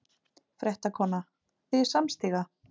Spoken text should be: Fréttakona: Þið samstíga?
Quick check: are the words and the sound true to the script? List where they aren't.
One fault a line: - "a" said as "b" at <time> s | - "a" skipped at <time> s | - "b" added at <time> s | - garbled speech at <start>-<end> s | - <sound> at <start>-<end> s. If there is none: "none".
none